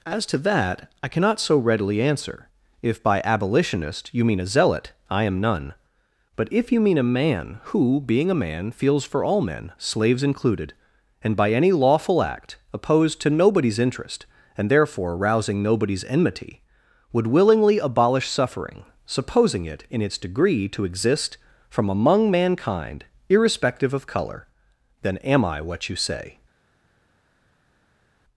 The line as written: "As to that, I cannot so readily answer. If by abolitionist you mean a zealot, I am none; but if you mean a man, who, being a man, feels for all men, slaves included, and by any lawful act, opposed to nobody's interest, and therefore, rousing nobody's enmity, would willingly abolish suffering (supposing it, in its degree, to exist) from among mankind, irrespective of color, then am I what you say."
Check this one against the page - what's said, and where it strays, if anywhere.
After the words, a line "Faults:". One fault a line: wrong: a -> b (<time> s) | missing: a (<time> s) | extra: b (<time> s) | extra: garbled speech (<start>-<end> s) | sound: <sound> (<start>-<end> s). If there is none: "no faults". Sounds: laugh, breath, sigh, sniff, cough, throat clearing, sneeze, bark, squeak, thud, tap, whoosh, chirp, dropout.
"As to that, I cannot so readily answer. If by abolitionist you mean a zealot, I am none; but if you mean a man, who, being a man, feels for all men, slaves included, and by any lawful act, opposed to nobody's interest, and therefore, rousing nobody's enmity, would willingly abolish suffering (supposing it, in its degree, to exist) from among mankind, irrespective of color, then am I what you say."
Faults:
no faults